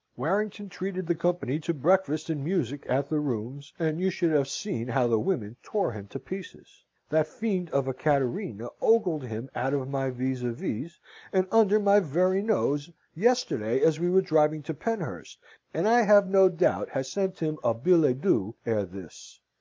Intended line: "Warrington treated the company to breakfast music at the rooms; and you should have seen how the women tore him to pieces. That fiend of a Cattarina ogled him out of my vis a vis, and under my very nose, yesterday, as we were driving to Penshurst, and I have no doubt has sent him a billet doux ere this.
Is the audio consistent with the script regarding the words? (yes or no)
no